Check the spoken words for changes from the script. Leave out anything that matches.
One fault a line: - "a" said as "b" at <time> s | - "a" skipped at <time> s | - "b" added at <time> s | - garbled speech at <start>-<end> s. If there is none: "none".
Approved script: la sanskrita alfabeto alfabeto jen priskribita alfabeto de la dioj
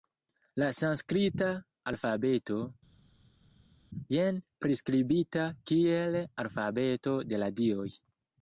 - "alfabeto" skipped at 2.6 s
- "kiel" added at 5.7 s